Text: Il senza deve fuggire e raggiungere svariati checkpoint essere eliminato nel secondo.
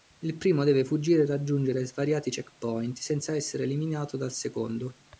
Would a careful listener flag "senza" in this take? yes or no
yes